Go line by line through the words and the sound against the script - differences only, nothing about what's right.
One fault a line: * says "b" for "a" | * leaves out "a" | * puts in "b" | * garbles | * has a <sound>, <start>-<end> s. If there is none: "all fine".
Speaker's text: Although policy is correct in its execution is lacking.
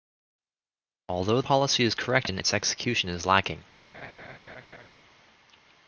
* has a laugh, 3.9-4.9 s